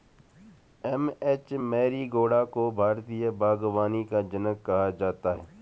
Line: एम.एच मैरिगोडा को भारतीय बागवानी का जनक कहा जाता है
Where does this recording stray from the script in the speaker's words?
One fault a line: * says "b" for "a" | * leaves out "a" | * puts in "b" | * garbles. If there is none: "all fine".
all fine